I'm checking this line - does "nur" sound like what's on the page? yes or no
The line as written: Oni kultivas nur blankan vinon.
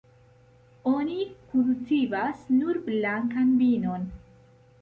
yes